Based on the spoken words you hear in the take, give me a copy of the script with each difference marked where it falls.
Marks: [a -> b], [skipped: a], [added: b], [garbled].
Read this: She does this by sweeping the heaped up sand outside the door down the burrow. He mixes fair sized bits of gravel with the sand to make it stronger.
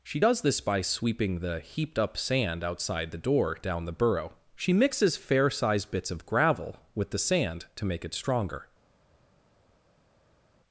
She does this by sweeping the heaped up sand outside the door down the burrow. [He -> She] mixes fair sized bits of gravel with the sand to make it stronger.